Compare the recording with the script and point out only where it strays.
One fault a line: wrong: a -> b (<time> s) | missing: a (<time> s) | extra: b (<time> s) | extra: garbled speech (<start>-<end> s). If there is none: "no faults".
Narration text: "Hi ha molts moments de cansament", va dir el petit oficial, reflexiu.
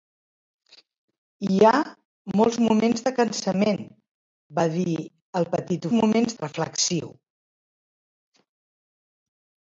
wrong: oficial -> moments (6.0 s)